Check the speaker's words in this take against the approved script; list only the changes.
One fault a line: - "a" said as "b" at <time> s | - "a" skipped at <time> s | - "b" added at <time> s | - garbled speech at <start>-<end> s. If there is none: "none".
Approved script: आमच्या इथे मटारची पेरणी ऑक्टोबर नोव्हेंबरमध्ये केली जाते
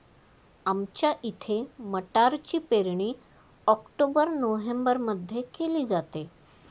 none